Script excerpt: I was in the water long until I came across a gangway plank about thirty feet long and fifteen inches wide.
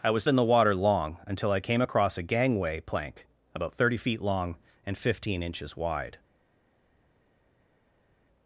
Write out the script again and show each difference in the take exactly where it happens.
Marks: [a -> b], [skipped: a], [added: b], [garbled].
I was in the water long until I came across a gangway plank about thirty feet long and fifteen inches wide.